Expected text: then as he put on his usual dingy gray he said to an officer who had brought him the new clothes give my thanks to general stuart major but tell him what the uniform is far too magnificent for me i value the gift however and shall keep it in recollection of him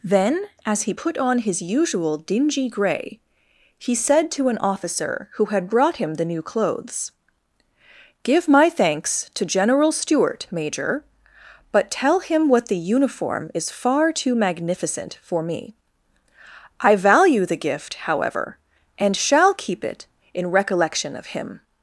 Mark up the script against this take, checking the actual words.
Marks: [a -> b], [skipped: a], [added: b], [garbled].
then as he put on his usual dingy gray he said to an officer who had brought him the new clothes give my thanks to general stuart major but tell him what the uniform is far too magnificent for me i value the gift however and shall keep it in recollection of him